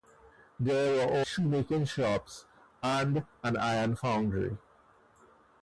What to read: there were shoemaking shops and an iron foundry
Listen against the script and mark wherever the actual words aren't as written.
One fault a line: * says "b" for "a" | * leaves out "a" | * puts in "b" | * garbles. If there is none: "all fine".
all fine